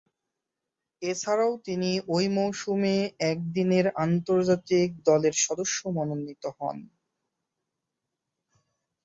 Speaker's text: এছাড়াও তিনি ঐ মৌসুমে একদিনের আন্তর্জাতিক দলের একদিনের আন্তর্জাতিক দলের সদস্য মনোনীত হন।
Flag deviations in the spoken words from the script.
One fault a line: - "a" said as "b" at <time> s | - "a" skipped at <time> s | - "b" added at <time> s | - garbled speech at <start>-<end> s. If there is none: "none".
- "একদিনের আন্তর্জাতিক দলের" skipped at 5.3 s